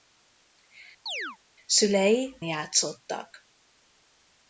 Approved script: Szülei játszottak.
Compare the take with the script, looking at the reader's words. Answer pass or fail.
pass